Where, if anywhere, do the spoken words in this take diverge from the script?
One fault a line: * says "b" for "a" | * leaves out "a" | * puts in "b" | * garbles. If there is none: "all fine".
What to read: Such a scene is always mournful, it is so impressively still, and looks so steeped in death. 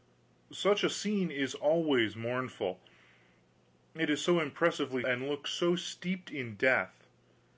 * leaves out "still"